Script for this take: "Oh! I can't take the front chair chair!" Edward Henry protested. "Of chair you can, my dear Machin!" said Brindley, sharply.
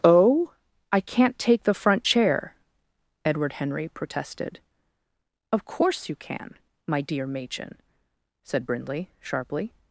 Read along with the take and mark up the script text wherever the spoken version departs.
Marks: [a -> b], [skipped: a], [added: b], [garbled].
"Oh! I can't take the front chair [skipped: chair!"] Edward Henry protested. "Of [chair -> course] you can, my dear Machin!" said Brindley, sharply.